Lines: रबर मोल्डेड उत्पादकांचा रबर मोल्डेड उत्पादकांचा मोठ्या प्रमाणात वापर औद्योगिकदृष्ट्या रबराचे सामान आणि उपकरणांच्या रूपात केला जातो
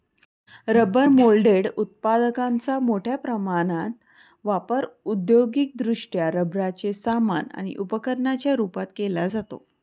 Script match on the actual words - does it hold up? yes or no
no